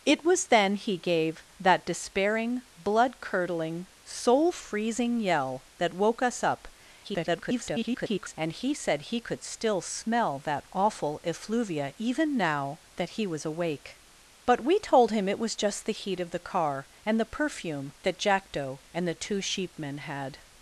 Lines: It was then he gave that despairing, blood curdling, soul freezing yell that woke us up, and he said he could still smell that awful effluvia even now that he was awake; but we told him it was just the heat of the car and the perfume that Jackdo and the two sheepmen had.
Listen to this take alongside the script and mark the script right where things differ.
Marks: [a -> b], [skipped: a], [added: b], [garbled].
It was then he gave that despairing, blood curdling, soul freezing yell that woke us up, [garbled] and he said he could still smell that awful effluvia even now that he was awake; but we told him it was just the heat of the car and the perfume that Jackdo and the two sheepmen had.